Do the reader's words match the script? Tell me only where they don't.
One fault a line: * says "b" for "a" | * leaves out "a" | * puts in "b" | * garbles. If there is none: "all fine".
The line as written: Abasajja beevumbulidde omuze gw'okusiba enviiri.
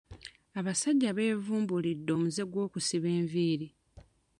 all fine